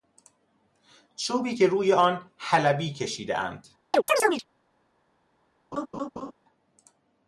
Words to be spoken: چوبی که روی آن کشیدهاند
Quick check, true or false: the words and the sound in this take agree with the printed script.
false